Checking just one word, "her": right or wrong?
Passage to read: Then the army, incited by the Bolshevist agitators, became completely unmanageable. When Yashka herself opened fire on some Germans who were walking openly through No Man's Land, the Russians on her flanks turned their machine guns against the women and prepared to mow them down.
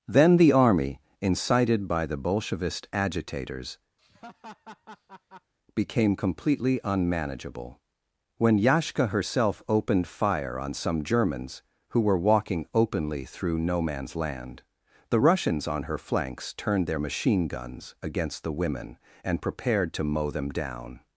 right